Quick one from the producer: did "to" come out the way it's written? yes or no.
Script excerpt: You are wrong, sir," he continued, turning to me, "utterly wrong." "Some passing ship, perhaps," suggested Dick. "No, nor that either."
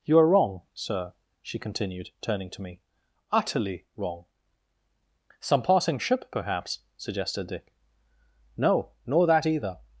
yes